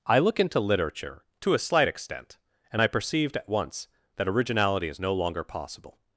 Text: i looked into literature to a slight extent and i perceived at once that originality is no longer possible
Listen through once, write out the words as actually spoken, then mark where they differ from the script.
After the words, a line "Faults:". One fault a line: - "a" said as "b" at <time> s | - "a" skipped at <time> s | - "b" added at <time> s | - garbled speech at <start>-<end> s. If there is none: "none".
i look into literature to a slight extent and i perceived at once that originality is no longer possible
Faults:
- "looked" said as "look" at 0.2 s